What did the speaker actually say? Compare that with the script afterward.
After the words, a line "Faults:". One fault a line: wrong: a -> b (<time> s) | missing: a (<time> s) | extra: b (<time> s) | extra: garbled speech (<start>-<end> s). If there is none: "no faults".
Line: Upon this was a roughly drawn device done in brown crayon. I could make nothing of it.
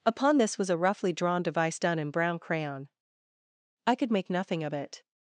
Upon this was a roughly drawn device done in brown crayon. I could make nothing of it.
Faults:
no faults